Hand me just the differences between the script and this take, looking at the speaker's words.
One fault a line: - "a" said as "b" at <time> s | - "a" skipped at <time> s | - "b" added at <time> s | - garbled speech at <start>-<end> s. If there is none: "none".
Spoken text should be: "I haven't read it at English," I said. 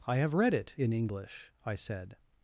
- "haven't" said as "have" at 0.2 s
- "at" said as "in" at 0.8 s